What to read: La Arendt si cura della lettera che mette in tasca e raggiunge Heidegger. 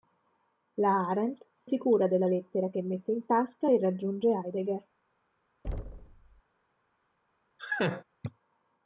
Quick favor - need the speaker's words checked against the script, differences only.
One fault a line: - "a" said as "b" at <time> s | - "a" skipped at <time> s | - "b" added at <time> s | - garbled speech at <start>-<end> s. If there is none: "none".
none